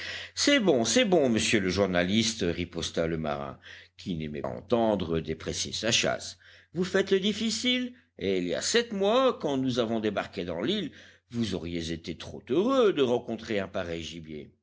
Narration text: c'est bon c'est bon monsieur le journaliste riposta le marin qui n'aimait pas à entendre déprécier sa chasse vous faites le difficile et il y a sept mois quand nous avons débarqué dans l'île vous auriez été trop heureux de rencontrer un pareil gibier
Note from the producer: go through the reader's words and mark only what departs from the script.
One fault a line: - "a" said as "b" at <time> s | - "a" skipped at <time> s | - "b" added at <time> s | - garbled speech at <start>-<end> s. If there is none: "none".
- "pas" skipped at 4.4 s